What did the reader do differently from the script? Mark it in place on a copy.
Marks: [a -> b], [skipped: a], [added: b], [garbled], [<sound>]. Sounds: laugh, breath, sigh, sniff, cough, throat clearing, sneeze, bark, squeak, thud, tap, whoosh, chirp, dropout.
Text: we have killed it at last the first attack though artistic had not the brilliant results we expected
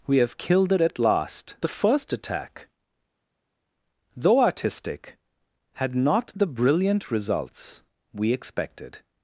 we have killed it at last the first attack though artistic had not the brilliant results we expected